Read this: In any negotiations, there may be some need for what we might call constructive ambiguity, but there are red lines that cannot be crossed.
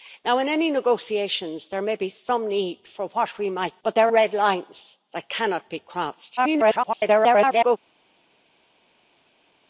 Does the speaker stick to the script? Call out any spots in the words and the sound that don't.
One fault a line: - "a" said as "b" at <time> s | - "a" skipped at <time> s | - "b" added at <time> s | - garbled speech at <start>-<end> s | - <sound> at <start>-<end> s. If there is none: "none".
- "call constructive ambiguity" skipped at 3.8 s
- "are" skipped at 4.1 s
- garbled speech at 6.4-7.8 s